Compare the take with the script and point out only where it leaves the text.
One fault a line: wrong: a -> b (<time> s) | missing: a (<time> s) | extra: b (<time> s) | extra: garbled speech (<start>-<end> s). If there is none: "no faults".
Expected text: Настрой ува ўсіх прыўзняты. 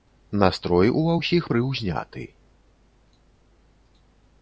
no faults